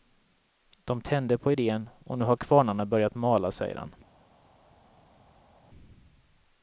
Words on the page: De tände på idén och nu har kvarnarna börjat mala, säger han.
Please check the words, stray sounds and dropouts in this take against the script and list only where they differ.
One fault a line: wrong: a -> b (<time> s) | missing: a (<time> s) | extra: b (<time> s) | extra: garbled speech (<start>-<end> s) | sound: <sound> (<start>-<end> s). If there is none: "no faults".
no faults